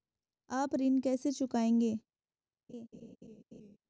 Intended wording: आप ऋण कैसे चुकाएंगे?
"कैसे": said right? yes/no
yes